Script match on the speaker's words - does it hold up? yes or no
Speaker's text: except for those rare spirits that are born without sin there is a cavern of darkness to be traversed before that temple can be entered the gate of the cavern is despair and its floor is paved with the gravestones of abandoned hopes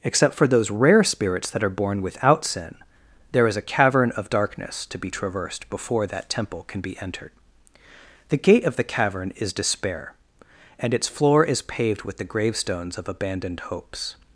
yes